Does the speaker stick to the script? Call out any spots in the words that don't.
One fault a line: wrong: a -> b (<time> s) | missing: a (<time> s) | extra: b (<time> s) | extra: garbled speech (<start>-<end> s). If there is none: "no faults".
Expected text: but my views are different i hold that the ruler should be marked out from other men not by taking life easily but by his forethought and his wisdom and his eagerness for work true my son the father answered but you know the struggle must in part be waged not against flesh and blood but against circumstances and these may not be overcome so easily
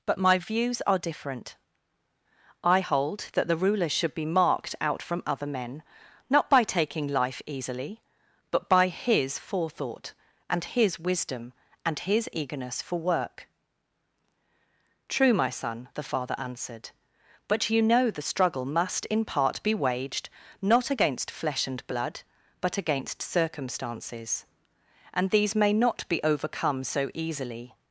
no faults